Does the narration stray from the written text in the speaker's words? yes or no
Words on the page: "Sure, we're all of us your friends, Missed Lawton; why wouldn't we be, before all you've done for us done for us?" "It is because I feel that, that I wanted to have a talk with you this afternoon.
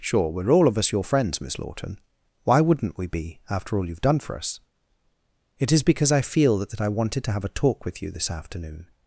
yes